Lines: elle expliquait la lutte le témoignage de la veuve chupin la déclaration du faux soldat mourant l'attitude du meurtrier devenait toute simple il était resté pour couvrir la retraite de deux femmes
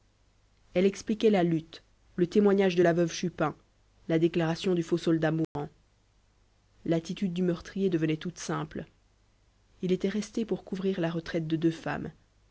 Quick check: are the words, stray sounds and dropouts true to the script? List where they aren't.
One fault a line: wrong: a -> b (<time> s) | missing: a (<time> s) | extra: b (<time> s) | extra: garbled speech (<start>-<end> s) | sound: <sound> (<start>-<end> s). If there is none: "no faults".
sound: dropout (5.4-5.6 s)